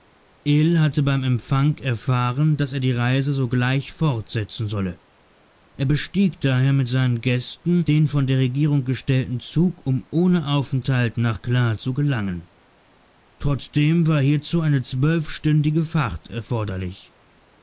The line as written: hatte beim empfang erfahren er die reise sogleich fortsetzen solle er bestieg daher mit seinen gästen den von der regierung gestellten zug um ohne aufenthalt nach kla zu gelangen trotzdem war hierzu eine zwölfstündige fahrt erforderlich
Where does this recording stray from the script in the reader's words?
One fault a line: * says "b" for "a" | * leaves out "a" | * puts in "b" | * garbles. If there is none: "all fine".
* puts in "daß"